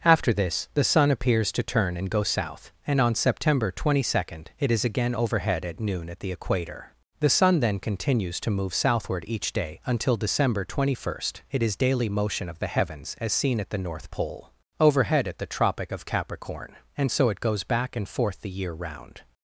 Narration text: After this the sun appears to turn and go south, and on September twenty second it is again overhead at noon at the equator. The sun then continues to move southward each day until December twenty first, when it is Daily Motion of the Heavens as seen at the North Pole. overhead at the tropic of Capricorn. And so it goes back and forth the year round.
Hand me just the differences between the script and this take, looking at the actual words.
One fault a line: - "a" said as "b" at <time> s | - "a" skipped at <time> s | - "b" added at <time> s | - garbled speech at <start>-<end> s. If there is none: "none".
- "when" skipped at 11.4 s